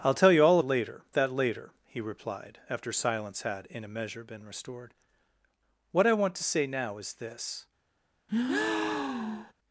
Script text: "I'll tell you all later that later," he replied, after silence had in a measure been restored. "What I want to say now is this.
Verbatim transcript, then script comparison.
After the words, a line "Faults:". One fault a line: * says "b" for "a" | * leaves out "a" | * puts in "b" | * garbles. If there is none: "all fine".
"I'll tell you all later that later," he replied, after silence had in a measure been restored. "What I want to say now is this.
Faults:
all fine